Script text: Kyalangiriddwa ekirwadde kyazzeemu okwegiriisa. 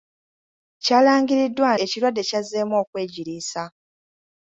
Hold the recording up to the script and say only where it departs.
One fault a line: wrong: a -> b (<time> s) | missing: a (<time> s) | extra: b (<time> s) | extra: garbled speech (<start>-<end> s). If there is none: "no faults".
no faults